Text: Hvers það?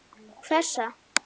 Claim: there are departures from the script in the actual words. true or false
false